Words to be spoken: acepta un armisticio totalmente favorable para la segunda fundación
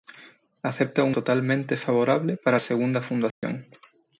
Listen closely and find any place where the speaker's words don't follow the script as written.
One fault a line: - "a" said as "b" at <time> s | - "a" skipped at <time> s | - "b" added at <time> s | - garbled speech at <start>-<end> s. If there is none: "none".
- "armisticio" skipped at 1.1 s
- "la" skipped at 2.6 s